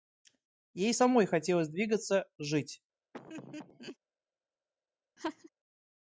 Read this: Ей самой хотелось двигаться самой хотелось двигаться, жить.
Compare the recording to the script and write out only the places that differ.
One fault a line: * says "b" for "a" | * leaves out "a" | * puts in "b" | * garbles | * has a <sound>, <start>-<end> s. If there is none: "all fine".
* leaves out "самой хотелось двигаться"
* has a laugh, 3.1-4.0 s
* has a laugh, 5.2-5.5 s